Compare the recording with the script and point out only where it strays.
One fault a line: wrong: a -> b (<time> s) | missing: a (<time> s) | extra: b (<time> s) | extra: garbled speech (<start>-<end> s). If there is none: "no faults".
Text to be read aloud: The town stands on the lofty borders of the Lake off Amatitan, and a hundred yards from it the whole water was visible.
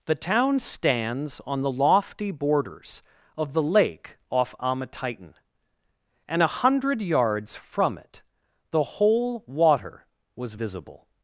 no faults